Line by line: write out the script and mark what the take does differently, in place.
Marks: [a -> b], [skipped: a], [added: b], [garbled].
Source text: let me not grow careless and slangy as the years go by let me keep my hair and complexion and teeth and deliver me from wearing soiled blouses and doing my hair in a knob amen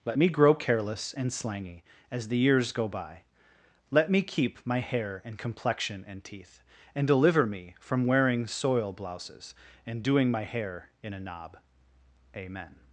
let me [skipped: not] grow careless and slangy as the years go by let me keep my hair and complexion and teeth and deliver me from wearing [soiled -> soil] blouses and doing my hair in a knob amen